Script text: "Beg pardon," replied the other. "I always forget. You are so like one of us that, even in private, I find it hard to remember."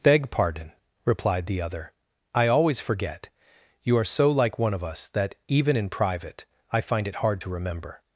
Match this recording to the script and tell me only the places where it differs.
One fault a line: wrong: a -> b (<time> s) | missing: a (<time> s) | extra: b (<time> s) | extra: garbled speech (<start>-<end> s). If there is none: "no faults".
no faults